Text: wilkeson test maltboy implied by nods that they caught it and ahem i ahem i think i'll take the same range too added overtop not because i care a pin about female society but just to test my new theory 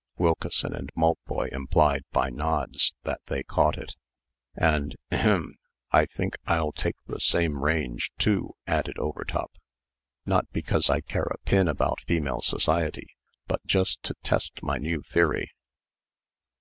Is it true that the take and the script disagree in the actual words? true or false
true